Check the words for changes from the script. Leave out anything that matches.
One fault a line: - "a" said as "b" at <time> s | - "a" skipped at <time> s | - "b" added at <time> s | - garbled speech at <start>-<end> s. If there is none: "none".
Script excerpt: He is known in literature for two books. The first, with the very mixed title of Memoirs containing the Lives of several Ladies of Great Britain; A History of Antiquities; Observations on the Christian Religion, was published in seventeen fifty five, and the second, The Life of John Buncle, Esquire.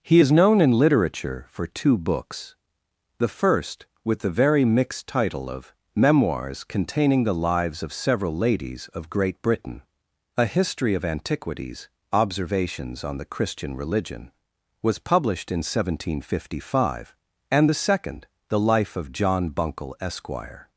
none